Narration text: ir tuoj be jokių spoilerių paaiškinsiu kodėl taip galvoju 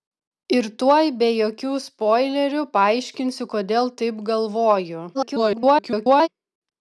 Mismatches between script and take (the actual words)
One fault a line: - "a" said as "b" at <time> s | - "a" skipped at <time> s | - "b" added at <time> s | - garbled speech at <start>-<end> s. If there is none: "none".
- garbled speech at 5.1-6.3 s